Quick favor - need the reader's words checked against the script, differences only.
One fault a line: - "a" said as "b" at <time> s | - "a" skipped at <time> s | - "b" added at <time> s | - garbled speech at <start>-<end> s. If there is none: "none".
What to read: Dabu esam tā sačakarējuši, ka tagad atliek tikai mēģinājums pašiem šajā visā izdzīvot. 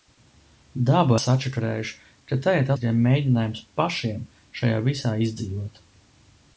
- "esam tā" skipped at 1.2 s
- "atliek" skipped at 2.7 s